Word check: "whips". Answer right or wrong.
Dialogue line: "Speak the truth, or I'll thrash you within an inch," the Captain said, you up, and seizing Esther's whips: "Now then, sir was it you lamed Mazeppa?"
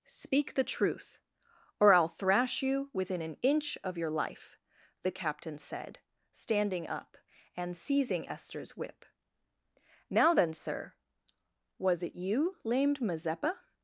wrong